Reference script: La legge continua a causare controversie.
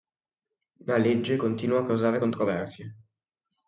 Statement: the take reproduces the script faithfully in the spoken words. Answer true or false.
true